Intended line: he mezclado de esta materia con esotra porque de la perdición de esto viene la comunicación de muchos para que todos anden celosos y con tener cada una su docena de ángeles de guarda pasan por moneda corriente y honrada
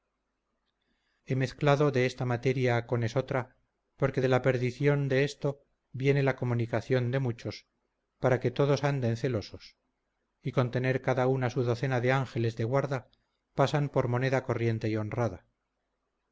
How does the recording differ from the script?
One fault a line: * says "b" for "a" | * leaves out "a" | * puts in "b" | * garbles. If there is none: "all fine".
all fine